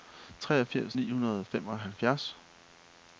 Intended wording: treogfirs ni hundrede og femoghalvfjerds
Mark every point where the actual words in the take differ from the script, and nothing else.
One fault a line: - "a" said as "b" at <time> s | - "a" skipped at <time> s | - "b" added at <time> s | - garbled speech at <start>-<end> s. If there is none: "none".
none